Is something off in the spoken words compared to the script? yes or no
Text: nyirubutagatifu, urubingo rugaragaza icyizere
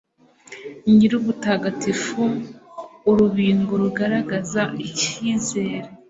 no